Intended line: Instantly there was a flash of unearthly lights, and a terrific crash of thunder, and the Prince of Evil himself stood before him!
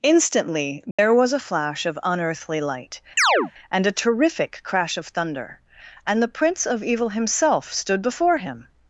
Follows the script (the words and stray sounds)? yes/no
no